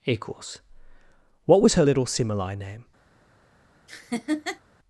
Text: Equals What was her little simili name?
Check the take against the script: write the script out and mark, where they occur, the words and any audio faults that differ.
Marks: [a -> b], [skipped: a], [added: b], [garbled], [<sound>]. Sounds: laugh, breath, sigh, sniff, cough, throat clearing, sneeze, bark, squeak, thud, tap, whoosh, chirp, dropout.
Equals What was her little simili name? [laugh]